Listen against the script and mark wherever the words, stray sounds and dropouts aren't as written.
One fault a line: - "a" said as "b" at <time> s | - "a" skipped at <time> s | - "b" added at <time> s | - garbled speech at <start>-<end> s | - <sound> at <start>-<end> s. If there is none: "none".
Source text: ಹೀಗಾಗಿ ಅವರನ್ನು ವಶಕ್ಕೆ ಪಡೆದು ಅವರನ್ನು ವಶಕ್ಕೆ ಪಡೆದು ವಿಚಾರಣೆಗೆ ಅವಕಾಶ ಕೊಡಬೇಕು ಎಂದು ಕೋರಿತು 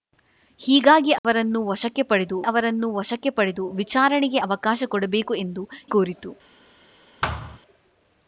- dropout at 1.2-1.2 s
- thud at 7.2-7.6 s